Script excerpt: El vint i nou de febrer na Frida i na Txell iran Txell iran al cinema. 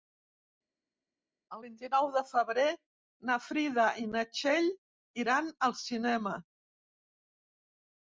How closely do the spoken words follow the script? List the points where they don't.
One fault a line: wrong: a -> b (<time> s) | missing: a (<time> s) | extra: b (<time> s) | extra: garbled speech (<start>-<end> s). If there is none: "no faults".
missing: Txell iran (5.5 s)